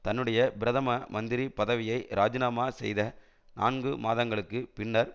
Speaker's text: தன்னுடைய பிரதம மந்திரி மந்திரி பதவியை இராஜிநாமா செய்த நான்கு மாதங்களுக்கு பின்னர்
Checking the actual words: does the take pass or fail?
fail